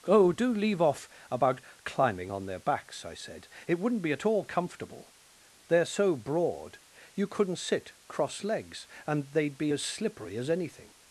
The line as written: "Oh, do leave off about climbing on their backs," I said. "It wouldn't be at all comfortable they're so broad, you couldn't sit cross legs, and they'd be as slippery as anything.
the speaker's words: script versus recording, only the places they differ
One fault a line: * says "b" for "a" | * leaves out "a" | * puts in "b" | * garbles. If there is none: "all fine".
all fine